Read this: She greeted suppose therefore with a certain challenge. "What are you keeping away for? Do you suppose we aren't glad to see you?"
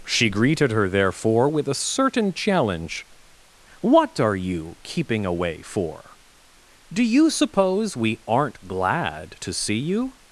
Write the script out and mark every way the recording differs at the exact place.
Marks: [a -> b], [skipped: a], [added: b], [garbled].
She greeted [suppose -> her] therefore with a certain challenge. "What are you keeping away for? Do you suppose we aren't glad to see you?"